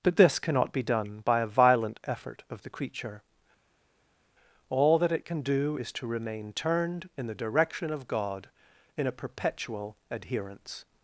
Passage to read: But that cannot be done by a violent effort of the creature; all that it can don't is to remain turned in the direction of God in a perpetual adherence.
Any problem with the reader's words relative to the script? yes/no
yes